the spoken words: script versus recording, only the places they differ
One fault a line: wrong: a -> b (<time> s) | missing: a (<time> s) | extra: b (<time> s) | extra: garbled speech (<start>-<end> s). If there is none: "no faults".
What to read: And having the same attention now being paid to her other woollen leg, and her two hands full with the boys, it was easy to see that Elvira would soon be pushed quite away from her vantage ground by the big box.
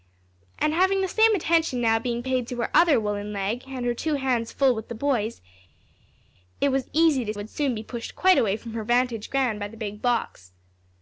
missing: see that Elvira (7.3 s)